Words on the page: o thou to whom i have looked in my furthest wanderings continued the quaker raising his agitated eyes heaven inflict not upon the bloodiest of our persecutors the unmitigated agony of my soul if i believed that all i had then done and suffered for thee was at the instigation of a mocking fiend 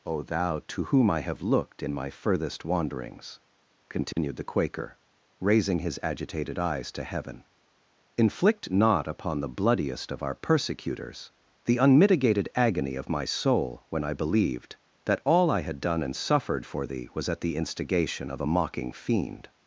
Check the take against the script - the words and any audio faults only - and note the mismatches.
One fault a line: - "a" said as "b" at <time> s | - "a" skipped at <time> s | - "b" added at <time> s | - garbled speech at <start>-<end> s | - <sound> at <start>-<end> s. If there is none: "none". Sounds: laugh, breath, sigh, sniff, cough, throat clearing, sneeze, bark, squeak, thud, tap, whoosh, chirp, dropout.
- dropout at 4.1-4.2 s
- "to" added at 6.9 s
- "if" said as "when" at 13.9 s
- "then" skipped at 15.8 s